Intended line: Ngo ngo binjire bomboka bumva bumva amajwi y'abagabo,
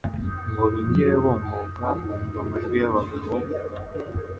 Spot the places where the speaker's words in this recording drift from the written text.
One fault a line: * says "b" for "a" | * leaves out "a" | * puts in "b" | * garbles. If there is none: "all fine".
* leaves out "ngo"
* leaves out "bumva"